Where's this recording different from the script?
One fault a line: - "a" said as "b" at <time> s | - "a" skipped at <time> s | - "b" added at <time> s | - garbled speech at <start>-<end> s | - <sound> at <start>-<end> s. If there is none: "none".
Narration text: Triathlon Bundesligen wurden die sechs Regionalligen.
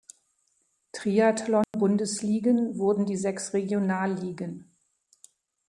- dropout at 1.6-1.7 s